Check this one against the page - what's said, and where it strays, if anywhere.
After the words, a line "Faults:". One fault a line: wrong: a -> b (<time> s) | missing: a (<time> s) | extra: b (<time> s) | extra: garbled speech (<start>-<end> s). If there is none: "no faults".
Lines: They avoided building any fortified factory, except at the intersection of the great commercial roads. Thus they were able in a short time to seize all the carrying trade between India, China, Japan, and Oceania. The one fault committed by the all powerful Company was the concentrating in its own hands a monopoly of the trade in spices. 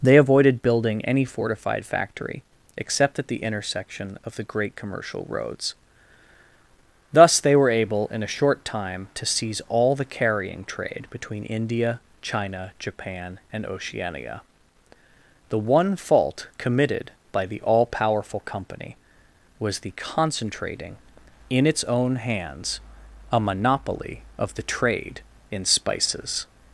They avoided building any fortified factory, except at the intersection of the great commercial roads. Thus they were able in a short time to seize all the carrying trade between India, China, Japan, and Oceania. The one fault committed by the all powerful Company was the concentrating in its own hands a monopoly of the trade in spices.
Faults:
no faults